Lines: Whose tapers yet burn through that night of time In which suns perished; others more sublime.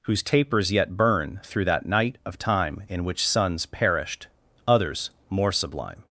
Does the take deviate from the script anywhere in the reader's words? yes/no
no